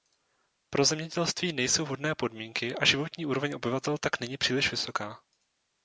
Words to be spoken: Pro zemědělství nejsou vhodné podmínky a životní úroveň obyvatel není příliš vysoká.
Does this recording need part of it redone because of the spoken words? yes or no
yes